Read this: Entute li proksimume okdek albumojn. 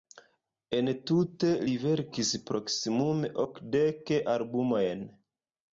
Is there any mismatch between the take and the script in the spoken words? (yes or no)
yes